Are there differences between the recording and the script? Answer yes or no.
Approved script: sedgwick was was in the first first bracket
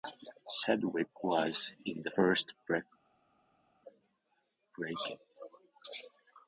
yes